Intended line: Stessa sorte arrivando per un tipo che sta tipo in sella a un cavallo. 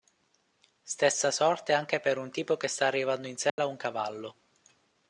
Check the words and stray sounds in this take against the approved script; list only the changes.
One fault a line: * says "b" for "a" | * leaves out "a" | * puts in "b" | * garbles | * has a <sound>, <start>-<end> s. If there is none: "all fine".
* says "anche" for "arrivando"
* says "arrivando" for "tipo"
* has a dropout, 3.5-3.6 s